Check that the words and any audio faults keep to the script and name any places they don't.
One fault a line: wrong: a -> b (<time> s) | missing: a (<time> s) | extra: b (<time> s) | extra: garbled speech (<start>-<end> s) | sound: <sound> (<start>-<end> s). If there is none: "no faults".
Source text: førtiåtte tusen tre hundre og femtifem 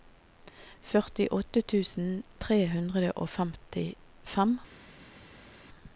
no faults